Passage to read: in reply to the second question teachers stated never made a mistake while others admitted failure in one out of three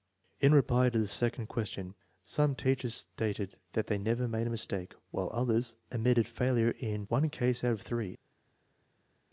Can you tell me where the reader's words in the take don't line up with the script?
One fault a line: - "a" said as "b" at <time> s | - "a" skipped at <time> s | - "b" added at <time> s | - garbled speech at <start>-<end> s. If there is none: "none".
- "some" added at 2.2 s
- "that they" added at 3.7 s
- "case" added at 7.3 s